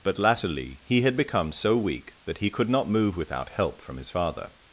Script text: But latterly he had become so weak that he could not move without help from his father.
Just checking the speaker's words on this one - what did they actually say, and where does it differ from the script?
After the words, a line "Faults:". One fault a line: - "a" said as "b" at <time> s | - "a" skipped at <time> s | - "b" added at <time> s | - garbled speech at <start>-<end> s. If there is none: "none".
But latterly he had become so weak that he could not move without help from his father.
Faults:
none